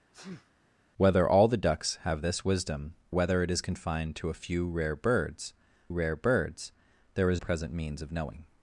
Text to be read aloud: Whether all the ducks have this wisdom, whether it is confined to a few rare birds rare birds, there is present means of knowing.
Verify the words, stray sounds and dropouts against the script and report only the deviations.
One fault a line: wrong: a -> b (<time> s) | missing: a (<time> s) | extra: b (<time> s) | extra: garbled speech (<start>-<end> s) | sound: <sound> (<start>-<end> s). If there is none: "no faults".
sound: sneeze (0.1-0.5 s)